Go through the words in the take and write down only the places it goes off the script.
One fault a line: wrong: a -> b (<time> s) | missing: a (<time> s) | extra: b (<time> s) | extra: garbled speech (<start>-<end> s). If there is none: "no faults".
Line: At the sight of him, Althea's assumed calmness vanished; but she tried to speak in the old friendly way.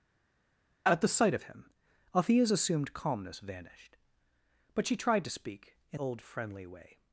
missing: the (6.0 s)